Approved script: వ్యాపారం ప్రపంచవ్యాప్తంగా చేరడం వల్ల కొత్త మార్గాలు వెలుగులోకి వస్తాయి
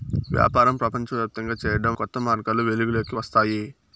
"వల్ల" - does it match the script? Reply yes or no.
no